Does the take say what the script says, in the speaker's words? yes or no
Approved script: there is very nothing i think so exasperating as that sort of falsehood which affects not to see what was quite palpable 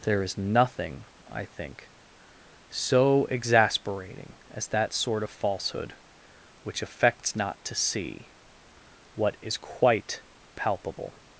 no